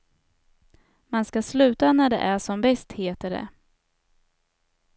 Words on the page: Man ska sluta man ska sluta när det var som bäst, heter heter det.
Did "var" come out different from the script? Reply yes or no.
yes